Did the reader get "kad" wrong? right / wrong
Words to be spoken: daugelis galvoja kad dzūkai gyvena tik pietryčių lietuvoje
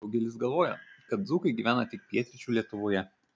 right